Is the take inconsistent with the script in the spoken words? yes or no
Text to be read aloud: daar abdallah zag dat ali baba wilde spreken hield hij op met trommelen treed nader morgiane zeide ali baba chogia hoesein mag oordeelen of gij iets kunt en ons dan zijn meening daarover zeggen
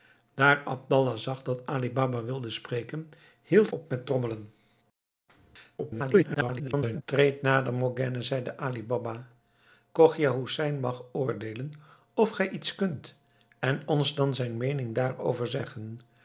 yes